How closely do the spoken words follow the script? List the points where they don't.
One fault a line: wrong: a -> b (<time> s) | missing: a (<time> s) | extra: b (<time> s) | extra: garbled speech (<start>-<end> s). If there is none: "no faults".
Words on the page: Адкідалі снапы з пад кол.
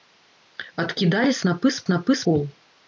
wrong: пад -> снапы (1.9 s)